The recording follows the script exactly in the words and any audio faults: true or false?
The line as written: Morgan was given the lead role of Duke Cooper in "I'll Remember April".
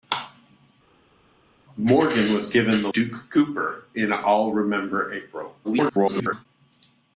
false